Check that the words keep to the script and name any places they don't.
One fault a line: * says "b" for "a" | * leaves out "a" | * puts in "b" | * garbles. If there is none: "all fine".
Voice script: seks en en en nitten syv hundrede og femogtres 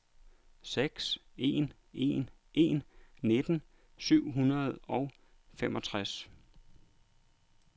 all fine